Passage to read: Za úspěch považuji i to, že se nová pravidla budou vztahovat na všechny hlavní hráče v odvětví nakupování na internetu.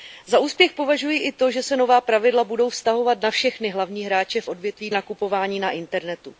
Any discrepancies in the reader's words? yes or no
no